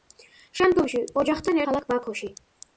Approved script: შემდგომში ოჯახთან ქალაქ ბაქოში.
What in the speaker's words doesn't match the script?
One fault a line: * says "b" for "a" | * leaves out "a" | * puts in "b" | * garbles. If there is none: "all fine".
all fine